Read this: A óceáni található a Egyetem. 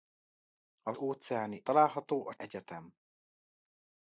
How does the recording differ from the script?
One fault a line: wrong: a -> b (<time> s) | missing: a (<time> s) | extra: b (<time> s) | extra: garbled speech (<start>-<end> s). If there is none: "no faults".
no faults